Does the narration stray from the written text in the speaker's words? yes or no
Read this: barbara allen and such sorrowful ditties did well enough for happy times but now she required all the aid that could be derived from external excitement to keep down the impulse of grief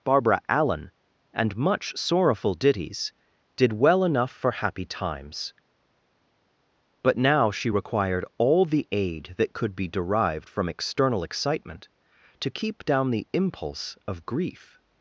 yes